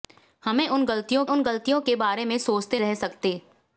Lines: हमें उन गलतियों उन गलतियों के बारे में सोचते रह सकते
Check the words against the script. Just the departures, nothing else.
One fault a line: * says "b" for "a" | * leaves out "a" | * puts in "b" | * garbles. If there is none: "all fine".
all fine